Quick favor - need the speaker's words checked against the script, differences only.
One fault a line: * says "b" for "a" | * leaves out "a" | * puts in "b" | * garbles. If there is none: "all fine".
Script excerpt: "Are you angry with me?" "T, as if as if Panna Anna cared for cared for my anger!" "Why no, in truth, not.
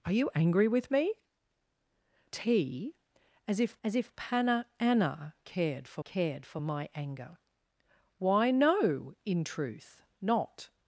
all fine